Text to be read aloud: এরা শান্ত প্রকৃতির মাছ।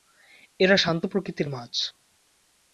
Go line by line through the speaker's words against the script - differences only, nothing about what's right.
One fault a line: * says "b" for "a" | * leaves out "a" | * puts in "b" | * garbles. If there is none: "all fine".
all fine